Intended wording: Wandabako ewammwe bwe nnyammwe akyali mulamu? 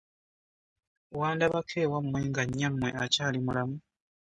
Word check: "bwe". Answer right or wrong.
wrong